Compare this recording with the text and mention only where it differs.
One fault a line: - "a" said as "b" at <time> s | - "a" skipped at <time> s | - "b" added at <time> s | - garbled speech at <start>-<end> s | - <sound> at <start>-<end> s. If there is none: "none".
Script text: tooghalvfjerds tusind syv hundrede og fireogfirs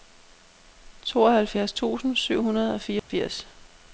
- dropout at 3.0-3.1 s